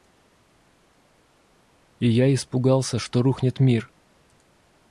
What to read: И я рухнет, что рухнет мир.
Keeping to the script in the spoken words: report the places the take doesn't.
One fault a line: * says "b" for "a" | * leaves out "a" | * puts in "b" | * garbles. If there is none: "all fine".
* says "испугался" for "рухнет"